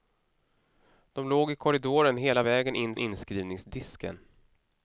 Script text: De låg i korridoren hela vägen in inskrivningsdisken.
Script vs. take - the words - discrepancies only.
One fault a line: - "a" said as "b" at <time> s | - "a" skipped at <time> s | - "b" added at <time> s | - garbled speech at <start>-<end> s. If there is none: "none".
none